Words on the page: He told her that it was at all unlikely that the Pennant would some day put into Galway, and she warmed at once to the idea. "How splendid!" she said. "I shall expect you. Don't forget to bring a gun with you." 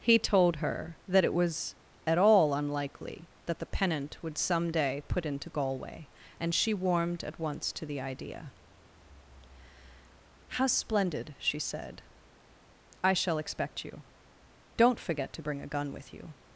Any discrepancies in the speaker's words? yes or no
no